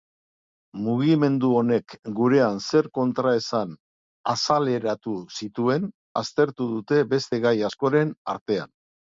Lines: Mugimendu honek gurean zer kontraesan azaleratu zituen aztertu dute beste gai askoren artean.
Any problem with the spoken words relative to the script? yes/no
no